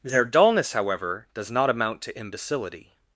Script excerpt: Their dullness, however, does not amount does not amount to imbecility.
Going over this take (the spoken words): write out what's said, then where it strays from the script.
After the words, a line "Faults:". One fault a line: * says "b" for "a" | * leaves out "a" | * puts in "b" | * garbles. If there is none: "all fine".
Their dullness, however, does not amount to imbecility.
Faults:
* leaves out "does not amount"